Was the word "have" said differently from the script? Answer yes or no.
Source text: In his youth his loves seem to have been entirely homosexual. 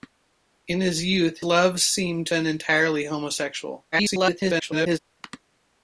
yes